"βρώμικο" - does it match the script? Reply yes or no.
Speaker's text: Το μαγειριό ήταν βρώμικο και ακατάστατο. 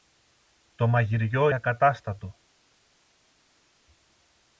no